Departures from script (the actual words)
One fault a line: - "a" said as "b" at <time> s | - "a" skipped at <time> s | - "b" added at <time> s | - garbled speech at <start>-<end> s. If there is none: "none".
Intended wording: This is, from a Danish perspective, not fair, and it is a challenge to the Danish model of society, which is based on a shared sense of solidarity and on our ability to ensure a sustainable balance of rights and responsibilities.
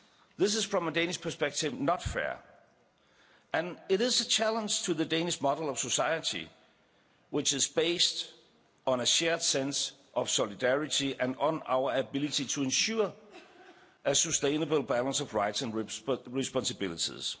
none